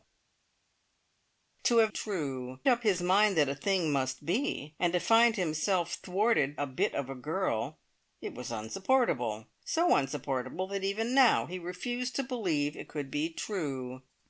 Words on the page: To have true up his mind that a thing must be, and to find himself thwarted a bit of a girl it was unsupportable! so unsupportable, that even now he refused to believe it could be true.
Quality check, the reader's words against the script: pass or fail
pass